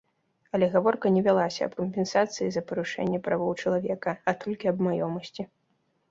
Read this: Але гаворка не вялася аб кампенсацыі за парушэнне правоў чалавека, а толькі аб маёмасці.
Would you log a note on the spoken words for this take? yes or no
no